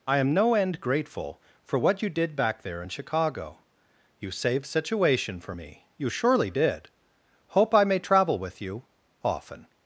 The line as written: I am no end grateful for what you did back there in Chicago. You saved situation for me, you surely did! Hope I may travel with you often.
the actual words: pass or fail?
pass